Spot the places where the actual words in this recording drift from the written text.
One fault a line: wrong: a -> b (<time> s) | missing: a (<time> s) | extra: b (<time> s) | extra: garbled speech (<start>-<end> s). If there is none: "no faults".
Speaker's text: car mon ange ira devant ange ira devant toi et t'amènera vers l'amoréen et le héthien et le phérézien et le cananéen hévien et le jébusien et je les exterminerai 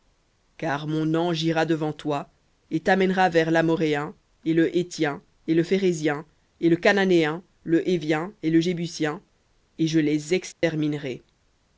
missing: ange ira devant (1.9 s)
extra: le (7.6 s)